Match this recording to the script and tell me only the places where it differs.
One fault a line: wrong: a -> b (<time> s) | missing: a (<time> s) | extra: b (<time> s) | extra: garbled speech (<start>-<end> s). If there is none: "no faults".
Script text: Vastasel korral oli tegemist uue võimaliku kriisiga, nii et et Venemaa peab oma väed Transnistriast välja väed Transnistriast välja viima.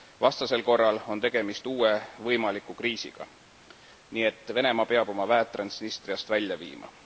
wrong: oli -> on (1.1 s)
missing: et (4.5 s)
missing: väed Transnistriast välja (6.6 s)